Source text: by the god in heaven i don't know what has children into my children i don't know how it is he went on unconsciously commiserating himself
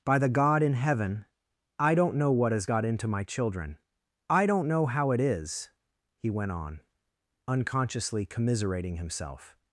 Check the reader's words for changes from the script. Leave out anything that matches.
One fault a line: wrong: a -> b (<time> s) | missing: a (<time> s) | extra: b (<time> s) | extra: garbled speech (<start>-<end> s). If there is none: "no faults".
wrong: children -> got (2.6 s)